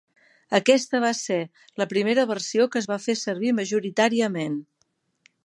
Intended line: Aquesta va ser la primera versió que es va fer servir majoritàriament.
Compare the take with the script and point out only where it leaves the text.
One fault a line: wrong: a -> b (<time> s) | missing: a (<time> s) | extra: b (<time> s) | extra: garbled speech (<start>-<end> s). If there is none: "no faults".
no faults